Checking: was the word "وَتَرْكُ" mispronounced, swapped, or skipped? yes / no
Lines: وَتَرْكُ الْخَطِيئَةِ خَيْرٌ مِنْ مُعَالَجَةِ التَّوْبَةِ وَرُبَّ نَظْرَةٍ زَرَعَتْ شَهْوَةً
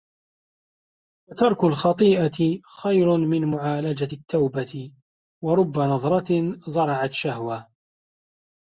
no